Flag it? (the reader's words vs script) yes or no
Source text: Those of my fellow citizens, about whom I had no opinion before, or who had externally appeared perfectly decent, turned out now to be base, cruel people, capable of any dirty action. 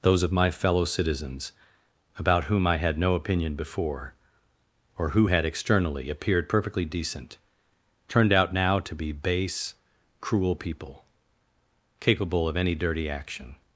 no